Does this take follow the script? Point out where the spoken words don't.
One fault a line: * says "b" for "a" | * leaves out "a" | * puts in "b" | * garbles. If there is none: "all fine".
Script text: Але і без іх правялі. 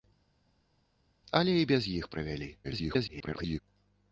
* garbles